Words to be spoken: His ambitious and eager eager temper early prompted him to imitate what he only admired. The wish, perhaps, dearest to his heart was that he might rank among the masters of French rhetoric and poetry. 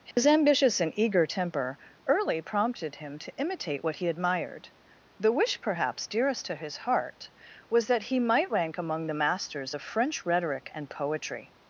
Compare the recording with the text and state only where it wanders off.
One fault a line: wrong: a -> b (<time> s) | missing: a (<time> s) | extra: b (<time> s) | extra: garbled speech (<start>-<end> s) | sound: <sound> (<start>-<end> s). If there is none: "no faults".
sound: dropout (0.1-0.2 s)
missing: eager (1.3 s)
missing: only (4.1 s)